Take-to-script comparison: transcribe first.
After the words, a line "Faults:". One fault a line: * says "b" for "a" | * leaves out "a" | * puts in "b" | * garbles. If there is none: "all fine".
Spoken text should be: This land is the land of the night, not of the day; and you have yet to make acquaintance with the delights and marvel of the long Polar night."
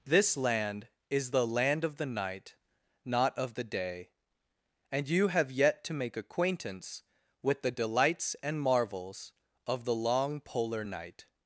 This land is the land of the night, not of the day; and you have yet to make acquaintance with the delights and marvels of the long Polar night."
Faults:
* says "marvels" for "marvel"